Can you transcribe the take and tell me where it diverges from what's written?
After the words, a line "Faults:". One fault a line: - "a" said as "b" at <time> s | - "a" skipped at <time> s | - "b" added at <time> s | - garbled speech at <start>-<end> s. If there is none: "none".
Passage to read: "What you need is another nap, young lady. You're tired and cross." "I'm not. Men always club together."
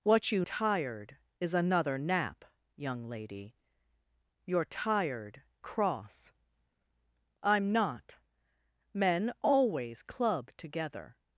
"What you tired is another nap, young lady. You're tired cross." "I'm not. Men always club together."
Faults:
- "need" said as "tired" at 0.4 s
- "and" skipped at 5.4 s